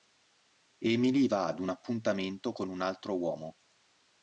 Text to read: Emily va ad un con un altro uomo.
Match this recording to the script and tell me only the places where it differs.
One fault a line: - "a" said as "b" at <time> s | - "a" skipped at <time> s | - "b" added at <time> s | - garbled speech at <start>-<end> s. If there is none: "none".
- "appuntamento" added at 1.7 s